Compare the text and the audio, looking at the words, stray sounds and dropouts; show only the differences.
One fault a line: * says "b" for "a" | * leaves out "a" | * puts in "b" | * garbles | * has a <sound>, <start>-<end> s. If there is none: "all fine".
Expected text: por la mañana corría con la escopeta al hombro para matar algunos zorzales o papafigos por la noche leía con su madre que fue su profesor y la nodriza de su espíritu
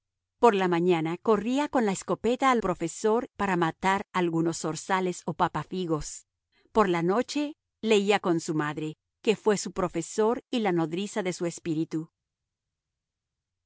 * says "profesor" for "hombro"